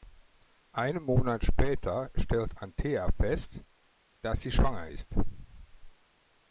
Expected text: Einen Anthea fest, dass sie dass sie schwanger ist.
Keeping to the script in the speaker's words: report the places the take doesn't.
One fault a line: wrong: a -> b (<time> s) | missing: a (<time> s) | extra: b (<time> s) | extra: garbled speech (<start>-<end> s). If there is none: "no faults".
extra: Monat später stellt (1.0 s)
missing: dass sie (4.5 s)